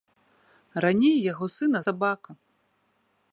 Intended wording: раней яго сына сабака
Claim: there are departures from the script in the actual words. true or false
false